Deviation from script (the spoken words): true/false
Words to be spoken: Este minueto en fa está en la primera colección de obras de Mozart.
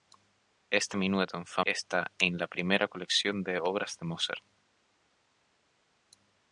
false